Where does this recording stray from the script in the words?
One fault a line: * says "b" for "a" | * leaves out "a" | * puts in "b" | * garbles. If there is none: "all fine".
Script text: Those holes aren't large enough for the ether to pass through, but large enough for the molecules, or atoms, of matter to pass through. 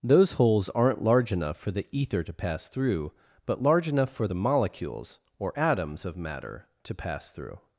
all fine